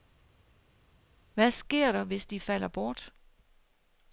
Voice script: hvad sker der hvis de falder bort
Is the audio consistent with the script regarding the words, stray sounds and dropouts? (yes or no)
yes